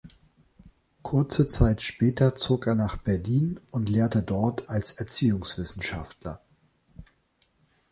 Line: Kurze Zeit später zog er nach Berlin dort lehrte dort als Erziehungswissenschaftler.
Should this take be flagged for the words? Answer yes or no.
yes